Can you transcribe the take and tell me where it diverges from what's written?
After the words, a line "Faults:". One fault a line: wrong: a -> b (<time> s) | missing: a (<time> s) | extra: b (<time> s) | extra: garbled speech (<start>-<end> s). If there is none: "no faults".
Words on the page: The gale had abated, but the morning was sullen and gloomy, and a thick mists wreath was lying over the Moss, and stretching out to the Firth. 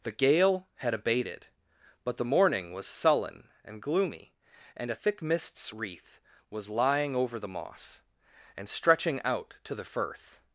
The gale had abated, but the morning was sullen and gloomy, and a thick mists wreath was lying over the Moss, and stretching out to the Firth.
Faults:
no faults